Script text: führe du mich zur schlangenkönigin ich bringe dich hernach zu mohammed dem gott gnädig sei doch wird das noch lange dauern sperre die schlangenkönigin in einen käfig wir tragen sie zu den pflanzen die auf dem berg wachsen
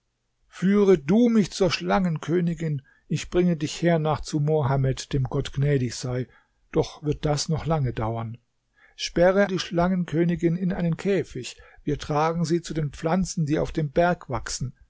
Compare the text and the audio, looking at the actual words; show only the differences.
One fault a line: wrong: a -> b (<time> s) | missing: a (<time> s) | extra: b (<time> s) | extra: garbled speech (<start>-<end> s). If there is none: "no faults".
no faults